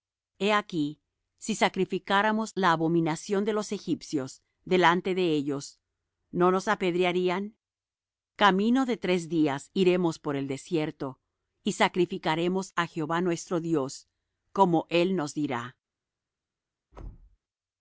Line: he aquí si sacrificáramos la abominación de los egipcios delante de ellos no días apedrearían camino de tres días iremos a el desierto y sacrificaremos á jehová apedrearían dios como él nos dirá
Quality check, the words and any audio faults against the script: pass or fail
fail